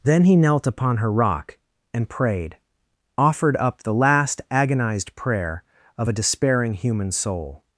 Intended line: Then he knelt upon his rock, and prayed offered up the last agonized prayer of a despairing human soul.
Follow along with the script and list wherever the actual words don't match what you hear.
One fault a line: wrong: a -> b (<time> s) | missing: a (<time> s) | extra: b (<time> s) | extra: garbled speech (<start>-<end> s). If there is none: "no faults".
wrong: his -> her (1.0 s)